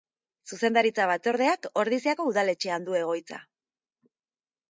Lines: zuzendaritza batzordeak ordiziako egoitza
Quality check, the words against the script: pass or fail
fail